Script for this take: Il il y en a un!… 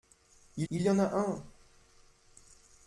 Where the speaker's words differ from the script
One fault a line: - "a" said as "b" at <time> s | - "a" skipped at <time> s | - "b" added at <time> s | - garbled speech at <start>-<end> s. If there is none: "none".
none